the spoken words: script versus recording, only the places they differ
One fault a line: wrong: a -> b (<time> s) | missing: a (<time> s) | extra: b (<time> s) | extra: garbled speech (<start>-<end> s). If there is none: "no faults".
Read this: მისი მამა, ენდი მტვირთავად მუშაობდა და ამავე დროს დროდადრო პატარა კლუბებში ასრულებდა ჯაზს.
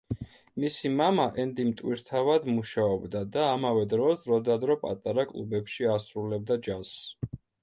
no faults